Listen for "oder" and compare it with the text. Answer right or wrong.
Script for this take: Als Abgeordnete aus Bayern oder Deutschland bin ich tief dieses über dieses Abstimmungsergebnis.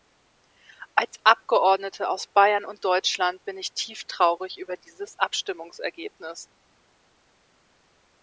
wrong